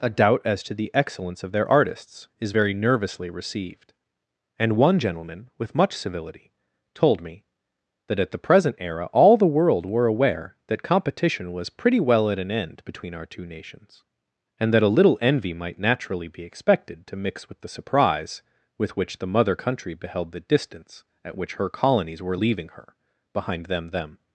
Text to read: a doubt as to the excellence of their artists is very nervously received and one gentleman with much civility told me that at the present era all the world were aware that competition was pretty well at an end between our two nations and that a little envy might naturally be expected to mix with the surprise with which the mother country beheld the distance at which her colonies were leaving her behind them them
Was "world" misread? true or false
false